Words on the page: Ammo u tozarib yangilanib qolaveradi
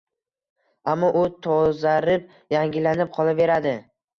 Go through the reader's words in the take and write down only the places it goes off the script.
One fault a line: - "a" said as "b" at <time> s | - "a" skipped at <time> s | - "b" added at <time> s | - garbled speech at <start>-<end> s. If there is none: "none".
none